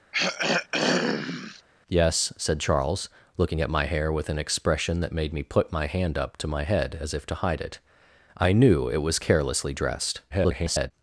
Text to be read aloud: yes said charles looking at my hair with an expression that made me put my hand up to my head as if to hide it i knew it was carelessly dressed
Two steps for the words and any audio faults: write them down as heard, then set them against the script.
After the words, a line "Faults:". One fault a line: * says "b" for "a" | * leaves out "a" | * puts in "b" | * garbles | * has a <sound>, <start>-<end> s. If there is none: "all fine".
yes said charles looking at my hair with an expression that made me put my hand up to my head as if to hide it i knew it was carelessly dressed [garbled]
Faults:
* has a throat clearing, 0.1-1.6 s
* garbles